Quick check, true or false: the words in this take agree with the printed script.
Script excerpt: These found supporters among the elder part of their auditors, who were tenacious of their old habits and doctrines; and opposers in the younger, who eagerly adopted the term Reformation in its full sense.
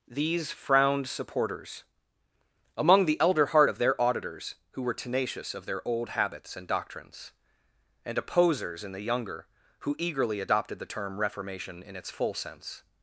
false